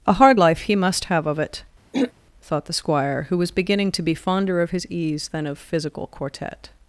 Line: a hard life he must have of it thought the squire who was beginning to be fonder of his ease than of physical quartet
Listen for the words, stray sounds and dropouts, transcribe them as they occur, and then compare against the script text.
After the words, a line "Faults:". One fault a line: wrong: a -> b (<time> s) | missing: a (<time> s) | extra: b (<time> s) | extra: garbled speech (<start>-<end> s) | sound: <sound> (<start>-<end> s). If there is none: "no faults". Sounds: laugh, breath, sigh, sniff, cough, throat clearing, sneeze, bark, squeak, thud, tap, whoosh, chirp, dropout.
a hard life he must have of it thought the squire who was beginning to be fonder of his ease than of physical quartet
Faults:
sound: throat clearing (1.9-2.1 s)